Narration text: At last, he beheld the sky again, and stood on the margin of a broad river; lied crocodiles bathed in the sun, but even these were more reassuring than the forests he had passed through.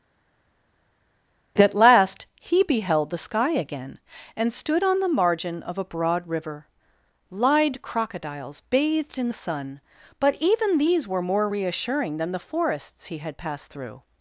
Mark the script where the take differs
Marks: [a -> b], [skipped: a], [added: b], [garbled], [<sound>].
At last, he beheld the sky again, and stood on the margin of a broad river; lied crocodiles bathed in the sun, but even these were more reassuring than the forests he had passed through.